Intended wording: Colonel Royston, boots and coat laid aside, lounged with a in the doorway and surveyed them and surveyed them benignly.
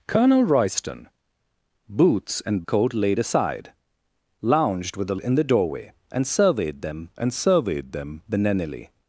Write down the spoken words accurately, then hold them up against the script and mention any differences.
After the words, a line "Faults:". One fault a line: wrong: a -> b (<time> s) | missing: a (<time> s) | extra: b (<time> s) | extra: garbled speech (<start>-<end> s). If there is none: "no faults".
Colonel Royston, boots and coat laid aside, lounged with a in the doorway and surveyed them and surveyed them benignly.
Faults:
no faults